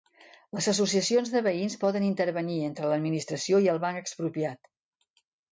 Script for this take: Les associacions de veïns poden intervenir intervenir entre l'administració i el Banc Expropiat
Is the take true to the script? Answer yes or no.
no